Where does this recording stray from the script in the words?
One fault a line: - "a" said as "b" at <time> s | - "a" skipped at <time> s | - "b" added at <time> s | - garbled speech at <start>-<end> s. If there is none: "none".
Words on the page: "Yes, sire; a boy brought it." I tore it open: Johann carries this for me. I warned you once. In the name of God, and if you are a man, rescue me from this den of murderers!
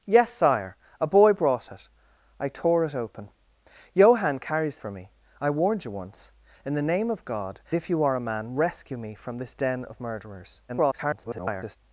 - "this" skipped at 4.8 s
- "and" skipped at 7.6 s
- garbled speech at 10.7-11.8 s